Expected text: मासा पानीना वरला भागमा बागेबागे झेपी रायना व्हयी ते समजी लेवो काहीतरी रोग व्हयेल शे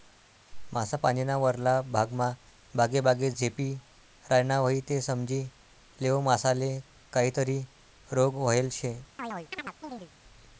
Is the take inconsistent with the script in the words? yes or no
yes